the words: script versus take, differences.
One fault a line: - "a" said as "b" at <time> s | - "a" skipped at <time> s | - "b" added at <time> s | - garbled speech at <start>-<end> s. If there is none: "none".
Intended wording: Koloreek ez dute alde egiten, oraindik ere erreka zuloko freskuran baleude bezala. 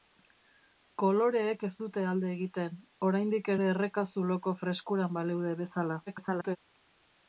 - garbled speech at 6.1-6.6 s